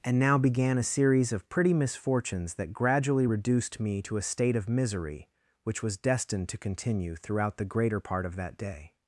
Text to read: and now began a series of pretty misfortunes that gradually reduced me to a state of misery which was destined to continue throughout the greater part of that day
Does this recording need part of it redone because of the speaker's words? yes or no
no